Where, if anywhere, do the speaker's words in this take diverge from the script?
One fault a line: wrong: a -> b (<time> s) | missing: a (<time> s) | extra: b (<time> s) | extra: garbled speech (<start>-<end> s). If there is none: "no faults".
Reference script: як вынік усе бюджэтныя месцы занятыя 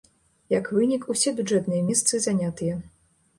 no faults